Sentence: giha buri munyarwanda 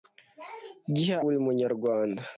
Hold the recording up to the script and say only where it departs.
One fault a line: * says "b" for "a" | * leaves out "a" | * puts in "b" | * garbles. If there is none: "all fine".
all fine